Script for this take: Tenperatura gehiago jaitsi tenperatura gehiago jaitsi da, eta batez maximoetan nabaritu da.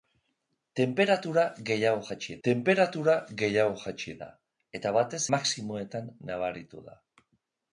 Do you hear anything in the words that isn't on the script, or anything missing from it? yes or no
no